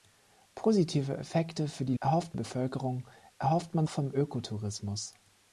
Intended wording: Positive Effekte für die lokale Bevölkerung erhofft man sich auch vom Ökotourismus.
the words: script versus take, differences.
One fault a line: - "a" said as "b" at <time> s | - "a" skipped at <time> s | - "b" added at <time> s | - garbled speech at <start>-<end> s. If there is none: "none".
- "lokale" said as "erhofft" at 2.0 s
- "sich auch" skipped at 3.9 s